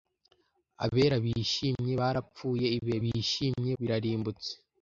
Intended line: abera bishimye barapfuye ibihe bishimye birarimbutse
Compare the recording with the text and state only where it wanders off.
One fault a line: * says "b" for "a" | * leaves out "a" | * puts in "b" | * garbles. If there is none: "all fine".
all fine